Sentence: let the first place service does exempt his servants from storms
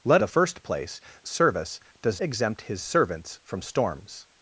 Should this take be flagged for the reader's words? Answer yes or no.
no